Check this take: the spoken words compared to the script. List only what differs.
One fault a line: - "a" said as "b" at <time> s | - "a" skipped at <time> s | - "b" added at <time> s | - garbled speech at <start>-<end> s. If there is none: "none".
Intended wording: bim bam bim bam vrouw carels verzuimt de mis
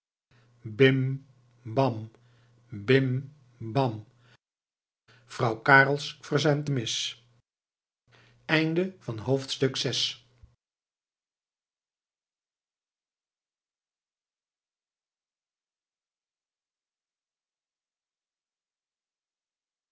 none